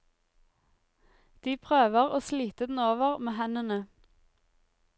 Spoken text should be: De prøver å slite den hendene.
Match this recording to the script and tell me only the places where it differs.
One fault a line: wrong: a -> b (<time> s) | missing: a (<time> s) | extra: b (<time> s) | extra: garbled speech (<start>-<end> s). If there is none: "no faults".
extra: over med (2.9 s)